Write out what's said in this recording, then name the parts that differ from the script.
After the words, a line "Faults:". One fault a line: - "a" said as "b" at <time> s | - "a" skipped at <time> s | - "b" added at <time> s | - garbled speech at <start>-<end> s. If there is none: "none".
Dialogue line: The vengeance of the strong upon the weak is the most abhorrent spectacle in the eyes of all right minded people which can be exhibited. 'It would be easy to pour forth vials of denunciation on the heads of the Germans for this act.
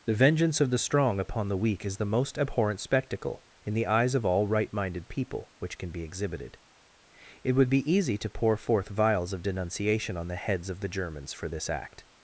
The vengeance of the strong upon the weak is the most abhorrent spectacle in the eyes of all right minded people which can be exhibited. 'It would be easy to pour forth vials of denunciation on the heads of the Germans for this act.
Faults:
none